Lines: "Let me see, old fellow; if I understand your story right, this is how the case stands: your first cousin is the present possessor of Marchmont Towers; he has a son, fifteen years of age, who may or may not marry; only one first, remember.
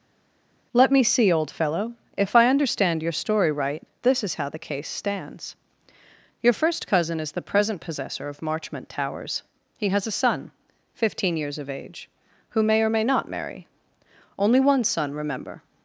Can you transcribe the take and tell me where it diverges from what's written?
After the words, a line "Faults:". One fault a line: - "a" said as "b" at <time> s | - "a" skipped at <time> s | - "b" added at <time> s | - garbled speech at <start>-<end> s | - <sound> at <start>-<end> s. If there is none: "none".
"Let me see, old fellow; if I understand your story right, this is how the case stands: your first cousin is the present possessor of Marchmont Towers; he has a son, fifteen years of age, who may or may not marry; only one son, remember.
Faults:
- "first" said as "son" at 14.8 s